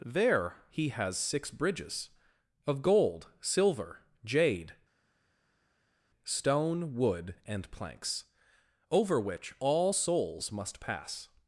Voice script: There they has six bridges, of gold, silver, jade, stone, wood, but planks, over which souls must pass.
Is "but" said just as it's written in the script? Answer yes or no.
no